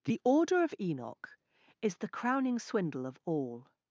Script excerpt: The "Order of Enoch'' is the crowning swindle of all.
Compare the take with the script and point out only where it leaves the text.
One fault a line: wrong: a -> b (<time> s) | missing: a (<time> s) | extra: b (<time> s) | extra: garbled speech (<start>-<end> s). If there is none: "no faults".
no faults